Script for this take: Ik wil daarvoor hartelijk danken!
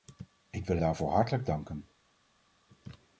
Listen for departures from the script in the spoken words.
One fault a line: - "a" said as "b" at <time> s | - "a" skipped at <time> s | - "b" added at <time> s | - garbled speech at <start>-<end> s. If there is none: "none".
none